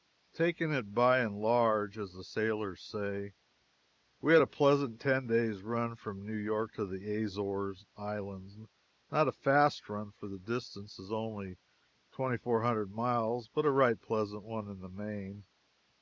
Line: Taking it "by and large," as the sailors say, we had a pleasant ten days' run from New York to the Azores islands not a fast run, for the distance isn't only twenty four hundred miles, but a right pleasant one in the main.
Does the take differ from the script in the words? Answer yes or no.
yes